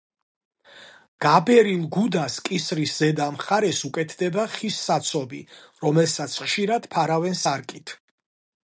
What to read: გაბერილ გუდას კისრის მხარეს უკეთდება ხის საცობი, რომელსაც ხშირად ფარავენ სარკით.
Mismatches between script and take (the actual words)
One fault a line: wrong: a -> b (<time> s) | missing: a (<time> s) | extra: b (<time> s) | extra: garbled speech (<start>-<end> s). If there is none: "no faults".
extra: ზედა (3.0 s)